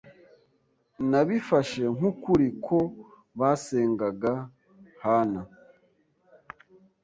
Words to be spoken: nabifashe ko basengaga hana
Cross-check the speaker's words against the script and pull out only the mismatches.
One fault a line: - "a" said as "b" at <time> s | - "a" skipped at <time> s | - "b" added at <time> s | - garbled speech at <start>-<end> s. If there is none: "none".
- "nk'ukuri" added at 2.0 s